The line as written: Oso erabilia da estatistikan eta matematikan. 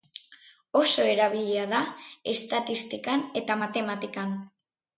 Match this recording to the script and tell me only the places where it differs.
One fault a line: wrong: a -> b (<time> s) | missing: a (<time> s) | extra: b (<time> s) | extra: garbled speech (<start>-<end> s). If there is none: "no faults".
no faults